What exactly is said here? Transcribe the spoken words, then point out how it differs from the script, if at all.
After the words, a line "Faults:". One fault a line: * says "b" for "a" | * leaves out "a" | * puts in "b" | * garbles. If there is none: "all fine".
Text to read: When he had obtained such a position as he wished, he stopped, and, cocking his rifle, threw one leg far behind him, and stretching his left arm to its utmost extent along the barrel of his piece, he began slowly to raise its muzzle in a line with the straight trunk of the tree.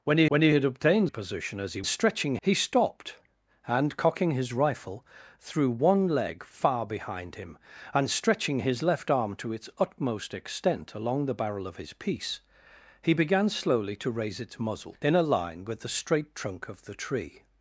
When he when he had obtained a position as he stretching, he stopped, and, cocking his rifle, threw one leg far behind him, and stretching his left arm to its utmost extent along the barrel of his piece, he began slowly to raise its muzzle in a line with the straight trunk of the tree.
Faults:
* puts in "when he"
* leaves out "such"
* says "stretching" for "wished"